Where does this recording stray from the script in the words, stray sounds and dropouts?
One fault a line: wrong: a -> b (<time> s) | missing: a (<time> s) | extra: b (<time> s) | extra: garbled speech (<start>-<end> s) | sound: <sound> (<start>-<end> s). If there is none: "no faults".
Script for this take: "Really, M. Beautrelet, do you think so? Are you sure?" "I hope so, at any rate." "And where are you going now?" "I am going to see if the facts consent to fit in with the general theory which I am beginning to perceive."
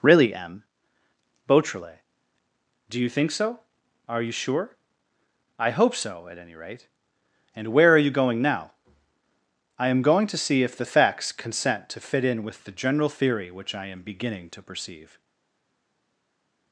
no faults